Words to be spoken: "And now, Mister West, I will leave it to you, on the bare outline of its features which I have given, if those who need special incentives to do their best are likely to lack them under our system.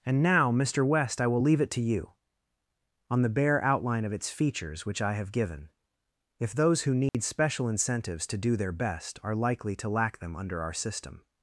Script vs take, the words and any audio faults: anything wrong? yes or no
yes